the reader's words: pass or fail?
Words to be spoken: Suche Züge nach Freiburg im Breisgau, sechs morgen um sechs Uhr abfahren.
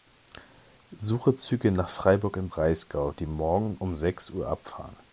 fail